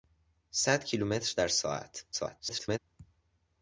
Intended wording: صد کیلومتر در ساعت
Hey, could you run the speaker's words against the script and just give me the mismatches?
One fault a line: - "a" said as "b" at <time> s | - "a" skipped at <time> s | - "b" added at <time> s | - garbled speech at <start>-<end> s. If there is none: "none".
- garbled speech at 2.1-2.8 s